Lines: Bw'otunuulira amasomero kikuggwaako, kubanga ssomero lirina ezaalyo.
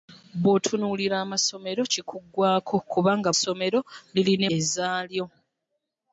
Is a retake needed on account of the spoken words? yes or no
no